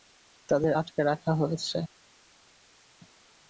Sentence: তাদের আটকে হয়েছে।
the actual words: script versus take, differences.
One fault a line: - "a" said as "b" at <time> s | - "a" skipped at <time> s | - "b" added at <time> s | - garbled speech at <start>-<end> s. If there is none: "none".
- "রাখা" added at 1.0 s